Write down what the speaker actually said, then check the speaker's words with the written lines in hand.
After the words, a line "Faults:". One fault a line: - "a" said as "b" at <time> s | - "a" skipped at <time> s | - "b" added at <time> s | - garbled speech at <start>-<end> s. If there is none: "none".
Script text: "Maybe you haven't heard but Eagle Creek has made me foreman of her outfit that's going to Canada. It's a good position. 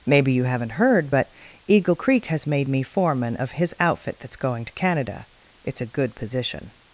"Maybe you haven't heard but Eagle Creek has made me foreman of his outfit that's going to Canada. It's a good position.
Faults:
- "her" said as "his" at 3.5 s